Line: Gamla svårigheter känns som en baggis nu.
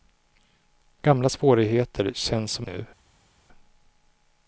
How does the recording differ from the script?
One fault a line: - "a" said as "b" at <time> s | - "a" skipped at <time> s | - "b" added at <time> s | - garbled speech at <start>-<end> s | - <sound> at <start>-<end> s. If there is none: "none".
- "en baggis" skipped at 2.7 s